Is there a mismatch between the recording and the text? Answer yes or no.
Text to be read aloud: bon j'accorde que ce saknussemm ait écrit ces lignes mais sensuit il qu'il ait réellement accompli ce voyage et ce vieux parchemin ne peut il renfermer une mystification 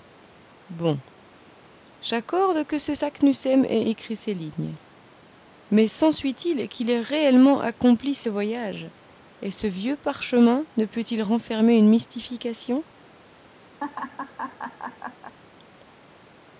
no